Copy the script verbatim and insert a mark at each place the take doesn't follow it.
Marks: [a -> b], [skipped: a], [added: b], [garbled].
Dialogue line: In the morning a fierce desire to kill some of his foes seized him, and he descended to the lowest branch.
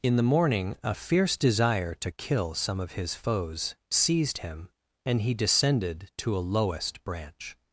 In the morning a fierce desire to kill some of his foes seized him, and he descended to [the -> a] lowest branch.